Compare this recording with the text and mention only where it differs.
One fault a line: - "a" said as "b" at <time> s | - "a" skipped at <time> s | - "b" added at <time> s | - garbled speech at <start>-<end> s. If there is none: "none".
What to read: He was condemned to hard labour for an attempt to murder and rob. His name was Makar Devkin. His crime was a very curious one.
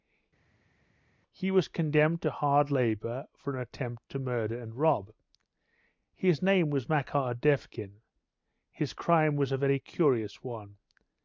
none